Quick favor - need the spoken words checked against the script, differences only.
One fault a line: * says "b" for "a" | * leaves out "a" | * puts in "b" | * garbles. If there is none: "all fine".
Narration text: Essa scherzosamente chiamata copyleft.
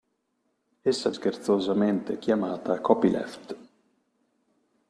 all fine